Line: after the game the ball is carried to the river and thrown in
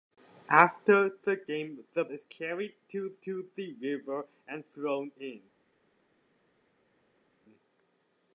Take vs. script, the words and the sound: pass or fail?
fail